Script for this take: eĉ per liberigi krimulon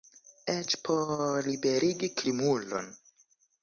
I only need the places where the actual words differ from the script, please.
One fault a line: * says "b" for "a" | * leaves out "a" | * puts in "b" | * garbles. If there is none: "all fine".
* says "por" for "per"